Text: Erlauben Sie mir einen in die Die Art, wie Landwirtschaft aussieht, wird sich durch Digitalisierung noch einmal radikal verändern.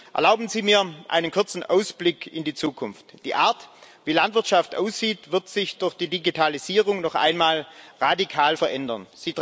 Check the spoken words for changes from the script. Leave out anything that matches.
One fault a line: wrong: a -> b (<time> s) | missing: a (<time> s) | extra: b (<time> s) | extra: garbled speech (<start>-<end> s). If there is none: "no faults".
extra: kurzen Ausblick (1.3 s)
extra: Zukunft (2.5 s)
extra: die (5.9 s)